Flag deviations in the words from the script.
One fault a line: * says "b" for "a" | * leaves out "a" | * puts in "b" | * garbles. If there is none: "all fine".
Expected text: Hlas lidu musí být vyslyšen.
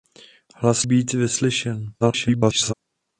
* leaves out "lidu musí"
* garbles